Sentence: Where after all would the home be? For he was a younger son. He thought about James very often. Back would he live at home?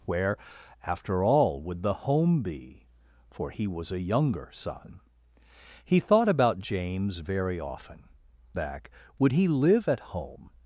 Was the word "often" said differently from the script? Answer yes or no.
no